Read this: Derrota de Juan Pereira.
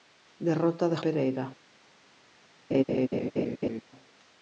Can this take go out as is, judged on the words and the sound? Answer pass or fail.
fail